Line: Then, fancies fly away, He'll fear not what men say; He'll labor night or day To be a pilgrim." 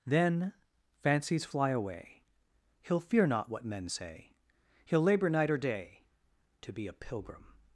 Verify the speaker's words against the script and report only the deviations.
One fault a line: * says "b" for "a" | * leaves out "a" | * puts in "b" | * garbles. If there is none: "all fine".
all fine